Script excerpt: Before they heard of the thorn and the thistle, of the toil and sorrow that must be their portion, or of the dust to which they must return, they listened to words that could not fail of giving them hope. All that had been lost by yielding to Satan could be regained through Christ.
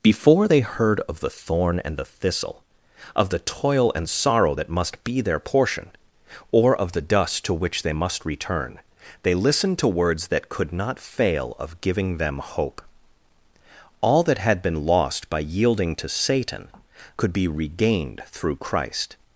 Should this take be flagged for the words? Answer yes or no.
no